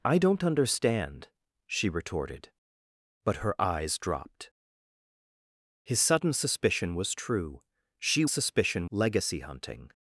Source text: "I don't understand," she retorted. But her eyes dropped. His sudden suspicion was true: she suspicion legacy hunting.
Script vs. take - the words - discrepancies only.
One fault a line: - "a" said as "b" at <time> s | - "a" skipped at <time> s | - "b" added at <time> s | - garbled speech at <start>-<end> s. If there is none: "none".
none